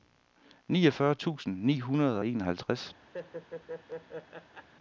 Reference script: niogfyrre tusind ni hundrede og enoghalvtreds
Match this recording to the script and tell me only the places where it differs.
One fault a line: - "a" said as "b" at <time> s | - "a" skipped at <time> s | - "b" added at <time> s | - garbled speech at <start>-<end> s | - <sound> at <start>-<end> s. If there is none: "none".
- laugh at 3.1-4.7 s